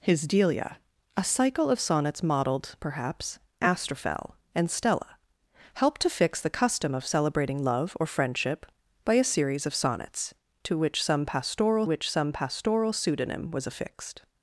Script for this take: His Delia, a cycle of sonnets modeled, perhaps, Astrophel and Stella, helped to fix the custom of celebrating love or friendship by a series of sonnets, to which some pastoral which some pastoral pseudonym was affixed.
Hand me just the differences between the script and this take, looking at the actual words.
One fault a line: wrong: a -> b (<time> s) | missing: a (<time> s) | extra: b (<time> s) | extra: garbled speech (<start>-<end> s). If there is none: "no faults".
no faults